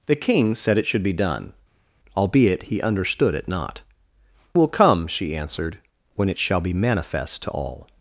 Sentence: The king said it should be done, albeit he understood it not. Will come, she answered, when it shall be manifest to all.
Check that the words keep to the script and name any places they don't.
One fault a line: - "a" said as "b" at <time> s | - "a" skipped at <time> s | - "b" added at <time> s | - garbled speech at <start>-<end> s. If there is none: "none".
none